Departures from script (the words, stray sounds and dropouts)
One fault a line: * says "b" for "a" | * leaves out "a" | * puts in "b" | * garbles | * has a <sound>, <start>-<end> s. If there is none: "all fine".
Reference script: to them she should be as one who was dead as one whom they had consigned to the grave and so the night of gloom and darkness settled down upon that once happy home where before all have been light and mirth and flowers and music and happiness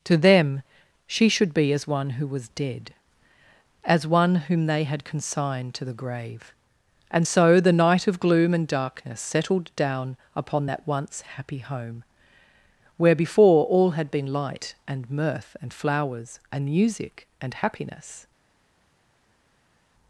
* says "had" for "have"